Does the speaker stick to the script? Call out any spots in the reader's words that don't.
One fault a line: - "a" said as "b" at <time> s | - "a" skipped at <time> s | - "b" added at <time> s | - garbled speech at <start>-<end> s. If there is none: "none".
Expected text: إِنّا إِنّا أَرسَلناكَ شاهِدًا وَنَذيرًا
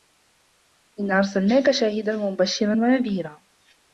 - "إِنّا" skipped at 1.2 s
- "وَمُبَشِّرًا" added at 2.1 s